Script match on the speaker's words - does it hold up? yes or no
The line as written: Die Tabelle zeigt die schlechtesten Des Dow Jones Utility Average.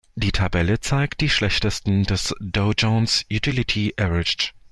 yes